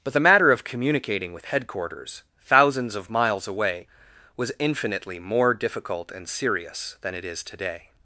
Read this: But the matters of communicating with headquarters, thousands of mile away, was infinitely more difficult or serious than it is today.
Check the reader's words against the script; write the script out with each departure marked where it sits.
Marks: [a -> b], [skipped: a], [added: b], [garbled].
But the [matters -> matter] of communicating with headquarters, thousands of [mile -> miles] away, was infinitely more difficult [or -> and] serious than it is today.